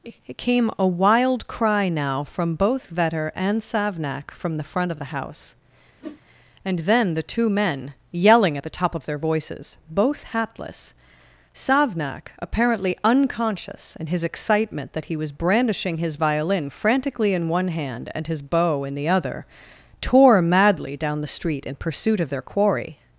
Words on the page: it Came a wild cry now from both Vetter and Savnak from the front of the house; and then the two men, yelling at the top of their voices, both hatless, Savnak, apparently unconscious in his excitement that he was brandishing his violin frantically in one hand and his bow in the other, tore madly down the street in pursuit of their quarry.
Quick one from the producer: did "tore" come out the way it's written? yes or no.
yes